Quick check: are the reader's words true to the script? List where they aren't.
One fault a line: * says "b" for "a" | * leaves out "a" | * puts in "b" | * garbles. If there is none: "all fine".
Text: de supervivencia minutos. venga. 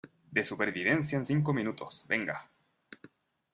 * puts in "en cinco"